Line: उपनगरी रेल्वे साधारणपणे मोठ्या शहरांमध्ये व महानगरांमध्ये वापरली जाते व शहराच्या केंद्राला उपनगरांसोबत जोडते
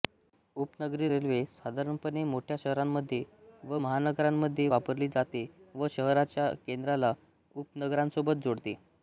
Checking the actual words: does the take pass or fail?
pass